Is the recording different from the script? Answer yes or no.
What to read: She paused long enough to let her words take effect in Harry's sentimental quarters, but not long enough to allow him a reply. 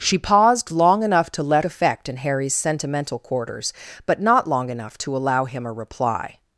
yes